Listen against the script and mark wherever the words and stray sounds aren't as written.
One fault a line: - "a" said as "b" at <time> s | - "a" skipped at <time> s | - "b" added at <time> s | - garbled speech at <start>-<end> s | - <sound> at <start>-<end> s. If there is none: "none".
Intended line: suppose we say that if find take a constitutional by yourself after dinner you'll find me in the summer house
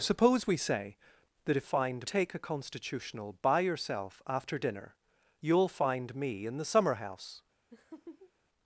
- laugh at 7.7-8.3 s